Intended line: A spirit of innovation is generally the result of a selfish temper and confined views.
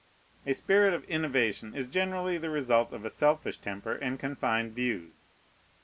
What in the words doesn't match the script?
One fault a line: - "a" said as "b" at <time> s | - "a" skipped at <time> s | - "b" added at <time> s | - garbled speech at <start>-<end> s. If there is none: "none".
none